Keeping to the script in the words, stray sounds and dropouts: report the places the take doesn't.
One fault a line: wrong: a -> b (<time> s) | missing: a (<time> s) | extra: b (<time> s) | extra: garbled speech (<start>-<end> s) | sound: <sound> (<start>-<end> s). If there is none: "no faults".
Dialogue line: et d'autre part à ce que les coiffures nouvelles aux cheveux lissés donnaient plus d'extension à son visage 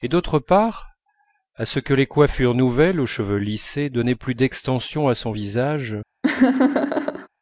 sound: laugh (6.2-7.3 s)